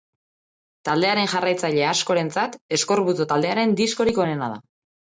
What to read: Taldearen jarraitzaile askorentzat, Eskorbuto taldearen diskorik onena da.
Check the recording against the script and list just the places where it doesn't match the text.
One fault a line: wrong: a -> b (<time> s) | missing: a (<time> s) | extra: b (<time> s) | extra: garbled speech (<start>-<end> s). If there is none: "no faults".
no faults